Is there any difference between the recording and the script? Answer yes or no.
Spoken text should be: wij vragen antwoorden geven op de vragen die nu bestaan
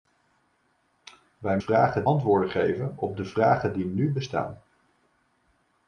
no